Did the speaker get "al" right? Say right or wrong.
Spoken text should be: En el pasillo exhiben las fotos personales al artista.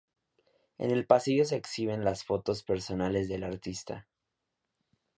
wrong